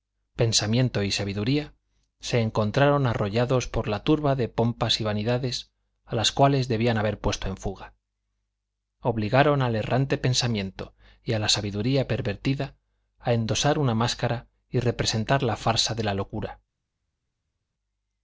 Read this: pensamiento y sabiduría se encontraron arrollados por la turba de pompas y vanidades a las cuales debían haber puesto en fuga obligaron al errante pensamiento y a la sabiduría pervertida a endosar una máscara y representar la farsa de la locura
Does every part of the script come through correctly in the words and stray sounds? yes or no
yes